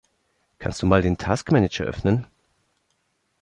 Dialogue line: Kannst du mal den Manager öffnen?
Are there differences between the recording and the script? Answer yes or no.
yes